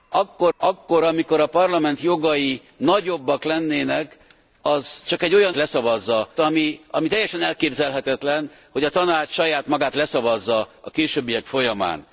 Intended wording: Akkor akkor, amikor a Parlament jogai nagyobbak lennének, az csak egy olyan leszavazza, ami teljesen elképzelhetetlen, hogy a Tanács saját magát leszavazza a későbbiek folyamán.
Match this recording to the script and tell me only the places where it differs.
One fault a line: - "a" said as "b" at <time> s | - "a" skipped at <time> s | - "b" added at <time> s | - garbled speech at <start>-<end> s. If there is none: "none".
none